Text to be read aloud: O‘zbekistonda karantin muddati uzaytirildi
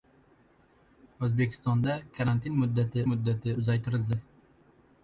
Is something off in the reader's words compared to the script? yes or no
yes